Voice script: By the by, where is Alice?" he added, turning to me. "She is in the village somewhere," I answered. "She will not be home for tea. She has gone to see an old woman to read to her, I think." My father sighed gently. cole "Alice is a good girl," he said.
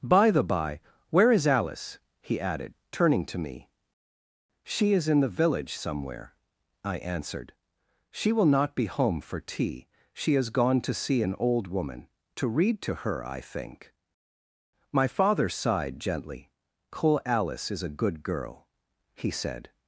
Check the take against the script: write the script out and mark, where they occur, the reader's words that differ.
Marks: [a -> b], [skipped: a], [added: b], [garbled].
By the by, where is Alice?" he added, turning to me. "She is in the village somewhere," I answered. "She will not be home for tea. She has gone to see an old woman to read to her, I think." My father sighed gently. cole "Alice is a good girl," he said.